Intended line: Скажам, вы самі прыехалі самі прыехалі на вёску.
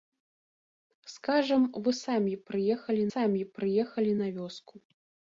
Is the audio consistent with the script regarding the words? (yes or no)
yes